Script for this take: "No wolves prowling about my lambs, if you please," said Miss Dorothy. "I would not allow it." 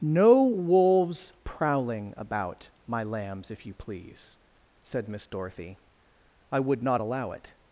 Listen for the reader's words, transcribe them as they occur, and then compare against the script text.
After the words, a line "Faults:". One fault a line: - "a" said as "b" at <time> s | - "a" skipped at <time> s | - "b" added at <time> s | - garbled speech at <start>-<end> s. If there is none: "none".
"No wolves prowling about my lambs, if you please," said Miss Dorothy. "I would not allow it."
Faults:
none